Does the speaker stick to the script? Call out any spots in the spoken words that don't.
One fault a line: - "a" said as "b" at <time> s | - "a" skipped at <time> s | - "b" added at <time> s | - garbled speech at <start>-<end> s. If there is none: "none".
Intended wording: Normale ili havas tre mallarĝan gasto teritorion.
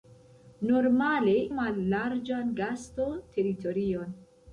- "ili havas tre" skipped at 1.4 s